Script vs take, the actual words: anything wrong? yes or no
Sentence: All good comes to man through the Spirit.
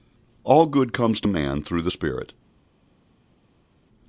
no